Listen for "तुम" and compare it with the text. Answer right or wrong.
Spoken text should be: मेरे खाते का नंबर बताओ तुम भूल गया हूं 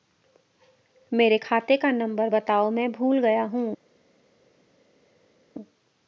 wrong